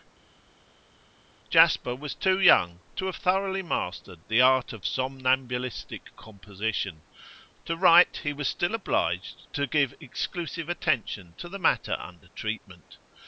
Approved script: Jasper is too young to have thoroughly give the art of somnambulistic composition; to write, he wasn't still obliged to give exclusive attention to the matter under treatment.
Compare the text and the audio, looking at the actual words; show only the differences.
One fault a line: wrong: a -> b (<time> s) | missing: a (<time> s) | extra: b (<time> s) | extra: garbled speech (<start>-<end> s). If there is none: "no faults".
wrong: is -> was (2.0 s)
wrong: give -> mastered (3.6 s)
wrong: wasn't -> was (8.3 s)